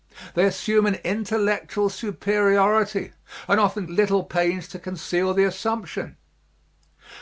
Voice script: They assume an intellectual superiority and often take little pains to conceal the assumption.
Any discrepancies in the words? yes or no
yes